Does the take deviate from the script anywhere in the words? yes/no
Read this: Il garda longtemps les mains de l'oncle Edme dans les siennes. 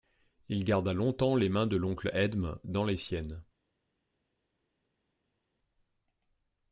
no